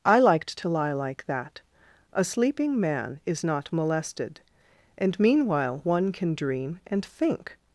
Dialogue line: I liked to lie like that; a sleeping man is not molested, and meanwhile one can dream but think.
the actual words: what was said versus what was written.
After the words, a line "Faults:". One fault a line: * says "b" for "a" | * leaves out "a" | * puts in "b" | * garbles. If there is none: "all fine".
I liked to lie like that; a sleeping man is not molested, and meanwhile one can dream and think.
Faults:
* says "and" for "but"